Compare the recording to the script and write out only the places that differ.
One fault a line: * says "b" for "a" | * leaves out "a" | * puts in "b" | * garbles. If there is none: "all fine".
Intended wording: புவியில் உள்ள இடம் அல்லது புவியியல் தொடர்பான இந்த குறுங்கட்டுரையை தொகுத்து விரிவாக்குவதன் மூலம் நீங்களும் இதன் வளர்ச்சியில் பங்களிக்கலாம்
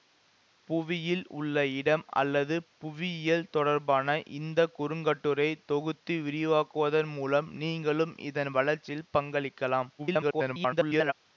* garbles